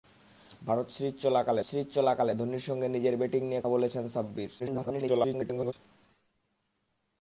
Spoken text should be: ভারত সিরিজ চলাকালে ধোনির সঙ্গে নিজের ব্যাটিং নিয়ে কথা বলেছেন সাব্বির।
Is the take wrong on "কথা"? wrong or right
wrong